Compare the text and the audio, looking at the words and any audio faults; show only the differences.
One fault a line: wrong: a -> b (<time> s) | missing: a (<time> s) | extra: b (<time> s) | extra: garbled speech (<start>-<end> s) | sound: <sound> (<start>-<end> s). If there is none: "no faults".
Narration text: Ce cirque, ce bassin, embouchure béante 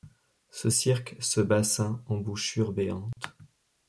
sound: dropout (3.1-3.2 s)